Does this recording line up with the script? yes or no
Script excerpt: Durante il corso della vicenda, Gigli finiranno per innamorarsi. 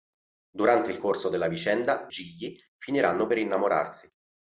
yes